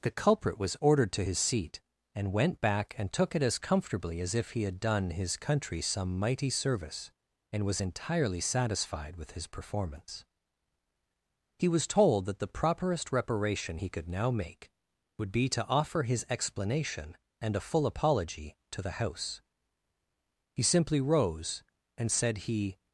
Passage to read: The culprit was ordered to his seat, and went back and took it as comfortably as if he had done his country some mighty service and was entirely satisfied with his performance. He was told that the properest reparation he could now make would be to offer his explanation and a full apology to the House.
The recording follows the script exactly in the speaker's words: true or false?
false